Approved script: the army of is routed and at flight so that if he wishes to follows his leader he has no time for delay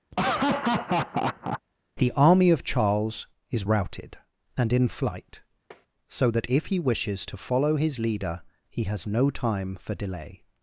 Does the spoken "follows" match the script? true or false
false